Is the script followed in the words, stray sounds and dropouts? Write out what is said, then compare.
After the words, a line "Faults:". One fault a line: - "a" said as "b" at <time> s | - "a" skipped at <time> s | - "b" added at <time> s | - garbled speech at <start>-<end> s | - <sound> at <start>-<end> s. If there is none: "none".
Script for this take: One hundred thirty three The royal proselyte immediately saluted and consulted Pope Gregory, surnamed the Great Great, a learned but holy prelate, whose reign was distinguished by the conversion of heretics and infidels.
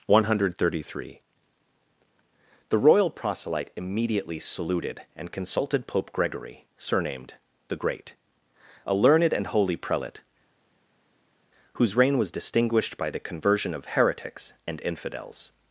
One hundred thirty three The royal proselyte immediately saluted and consulted Pope Gregory, surnamed the Great, a learned and holy prelate, whose reign was distinguished by the conversion of heretics and infidels.
Faults:
- "Great" skipped at 8.2 s
- "but" said as "and" at 9.3 s